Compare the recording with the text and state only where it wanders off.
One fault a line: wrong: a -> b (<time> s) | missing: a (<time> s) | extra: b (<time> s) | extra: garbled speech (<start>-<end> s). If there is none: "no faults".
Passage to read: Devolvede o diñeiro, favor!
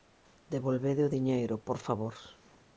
extra: por (1.7 s)